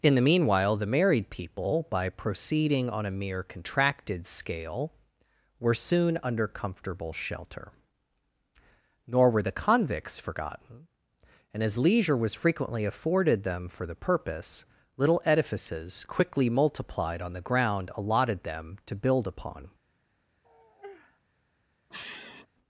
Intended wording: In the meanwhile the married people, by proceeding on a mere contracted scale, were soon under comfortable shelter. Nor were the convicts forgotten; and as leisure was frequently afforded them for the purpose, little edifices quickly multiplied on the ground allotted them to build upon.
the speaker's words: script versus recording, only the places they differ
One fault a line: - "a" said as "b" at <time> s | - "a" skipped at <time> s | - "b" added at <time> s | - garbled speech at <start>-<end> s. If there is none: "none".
none